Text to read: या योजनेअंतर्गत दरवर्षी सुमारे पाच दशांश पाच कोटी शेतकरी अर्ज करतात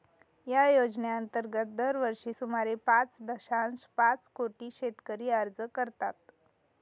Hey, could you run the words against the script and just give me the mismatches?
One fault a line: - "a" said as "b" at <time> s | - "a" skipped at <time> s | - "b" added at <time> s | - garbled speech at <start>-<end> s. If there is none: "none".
none